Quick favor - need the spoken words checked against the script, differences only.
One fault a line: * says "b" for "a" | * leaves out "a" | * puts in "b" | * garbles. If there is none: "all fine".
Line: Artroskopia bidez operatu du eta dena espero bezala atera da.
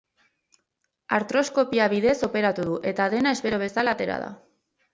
all fine